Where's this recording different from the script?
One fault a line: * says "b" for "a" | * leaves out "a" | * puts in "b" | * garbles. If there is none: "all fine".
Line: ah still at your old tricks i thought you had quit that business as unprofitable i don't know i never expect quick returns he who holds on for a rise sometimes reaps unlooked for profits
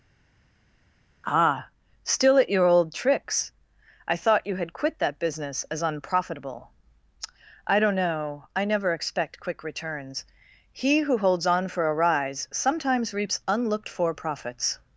all fine